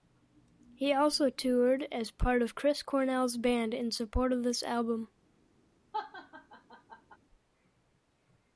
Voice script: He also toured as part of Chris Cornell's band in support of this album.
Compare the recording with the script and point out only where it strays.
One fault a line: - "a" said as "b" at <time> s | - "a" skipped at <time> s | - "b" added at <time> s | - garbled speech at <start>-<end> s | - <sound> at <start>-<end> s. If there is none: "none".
- laugh at 5.9-7.2 s